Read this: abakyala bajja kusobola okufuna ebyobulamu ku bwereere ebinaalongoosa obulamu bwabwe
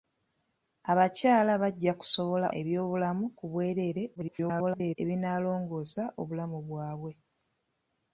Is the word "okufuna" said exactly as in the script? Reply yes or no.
no